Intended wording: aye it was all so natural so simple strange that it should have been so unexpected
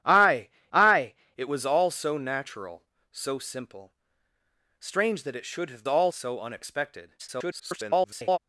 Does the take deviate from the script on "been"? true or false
true